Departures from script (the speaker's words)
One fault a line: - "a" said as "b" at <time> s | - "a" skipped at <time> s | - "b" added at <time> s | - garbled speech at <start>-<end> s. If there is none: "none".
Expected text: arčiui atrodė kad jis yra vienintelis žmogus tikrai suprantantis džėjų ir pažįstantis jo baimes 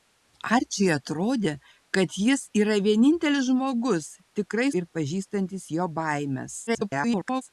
- "suprantantis džėjų" skipped at 4.7 s
- garbled speech at 6.7-7.4 s